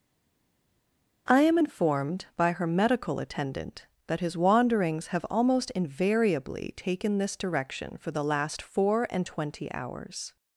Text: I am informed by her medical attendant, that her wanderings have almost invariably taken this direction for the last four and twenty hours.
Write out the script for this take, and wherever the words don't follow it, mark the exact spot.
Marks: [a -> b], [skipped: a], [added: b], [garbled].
I am informed by her medical attendant, that [her -> his] wanderings have almost invariably taken this direction for the last four and twenty hours.